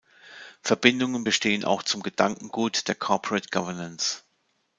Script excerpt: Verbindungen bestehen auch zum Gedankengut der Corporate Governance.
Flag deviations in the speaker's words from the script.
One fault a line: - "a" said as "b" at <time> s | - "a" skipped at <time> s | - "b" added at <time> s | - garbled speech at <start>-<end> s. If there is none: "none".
none